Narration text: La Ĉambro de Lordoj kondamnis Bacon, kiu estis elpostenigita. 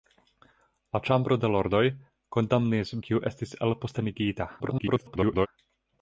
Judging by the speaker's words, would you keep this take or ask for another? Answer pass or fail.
fail